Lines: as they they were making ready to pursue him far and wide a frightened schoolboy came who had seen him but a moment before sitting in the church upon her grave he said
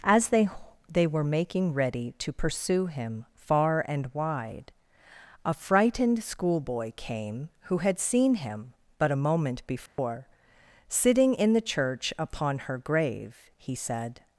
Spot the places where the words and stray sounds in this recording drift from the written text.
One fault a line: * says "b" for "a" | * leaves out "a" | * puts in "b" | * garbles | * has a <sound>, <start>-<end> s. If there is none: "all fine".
* has a dropout, 9.9-10.0 s